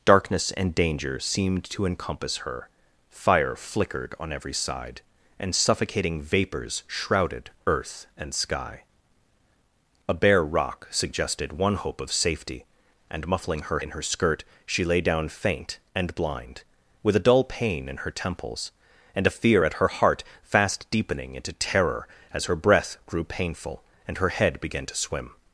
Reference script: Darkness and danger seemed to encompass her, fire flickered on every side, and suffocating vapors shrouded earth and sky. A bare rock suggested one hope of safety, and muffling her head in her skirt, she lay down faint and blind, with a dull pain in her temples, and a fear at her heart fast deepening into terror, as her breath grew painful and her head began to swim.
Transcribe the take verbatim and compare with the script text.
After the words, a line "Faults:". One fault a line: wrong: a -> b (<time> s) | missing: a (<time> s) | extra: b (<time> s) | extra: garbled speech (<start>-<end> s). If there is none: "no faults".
Darkness and danger seemed to encompass her, fire flickered on every side, and suffocating vapors shrouded earth and sky. A bare rock suggested one hope of safety, and muffling her in her skirt, she lay down faint and blind, with a dull pain in her temples, and a fear at her heart fast deepening into terror, as her breath grew painful and her head began to swim.
Faults:
missing: head (13.8 s)